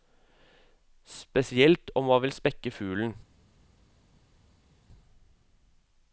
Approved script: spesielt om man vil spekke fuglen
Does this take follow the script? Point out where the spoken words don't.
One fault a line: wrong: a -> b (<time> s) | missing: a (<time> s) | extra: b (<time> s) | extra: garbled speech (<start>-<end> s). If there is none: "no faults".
no faults